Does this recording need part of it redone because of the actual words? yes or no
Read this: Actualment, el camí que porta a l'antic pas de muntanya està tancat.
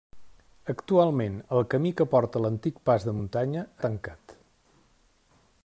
yes